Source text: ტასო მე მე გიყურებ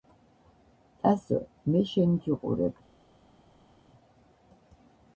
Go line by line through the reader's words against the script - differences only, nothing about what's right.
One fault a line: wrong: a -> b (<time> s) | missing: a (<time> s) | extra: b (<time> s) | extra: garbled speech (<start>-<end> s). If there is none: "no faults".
wrong: მე -> შენ (1.9 s)